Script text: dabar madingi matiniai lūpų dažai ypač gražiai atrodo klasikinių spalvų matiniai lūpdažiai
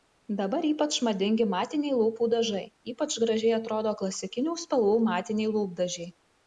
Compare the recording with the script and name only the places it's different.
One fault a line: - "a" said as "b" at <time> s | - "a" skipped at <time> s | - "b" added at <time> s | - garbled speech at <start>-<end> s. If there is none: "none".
- "ypač" added at 0.7 s